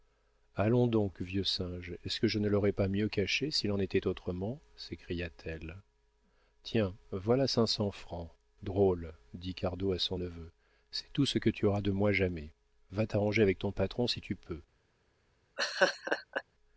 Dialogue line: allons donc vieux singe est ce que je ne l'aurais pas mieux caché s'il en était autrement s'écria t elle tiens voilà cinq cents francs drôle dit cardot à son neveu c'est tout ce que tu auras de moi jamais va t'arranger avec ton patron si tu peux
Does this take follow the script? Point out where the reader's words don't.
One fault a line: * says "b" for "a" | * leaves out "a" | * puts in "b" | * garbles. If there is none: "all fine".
all fine